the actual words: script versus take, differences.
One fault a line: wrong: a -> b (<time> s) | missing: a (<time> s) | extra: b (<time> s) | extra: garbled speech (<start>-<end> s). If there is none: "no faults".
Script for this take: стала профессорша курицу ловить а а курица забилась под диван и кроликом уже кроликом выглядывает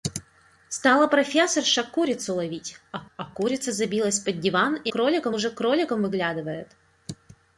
no faults